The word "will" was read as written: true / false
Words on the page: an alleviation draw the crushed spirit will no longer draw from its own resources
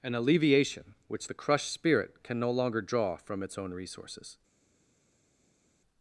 false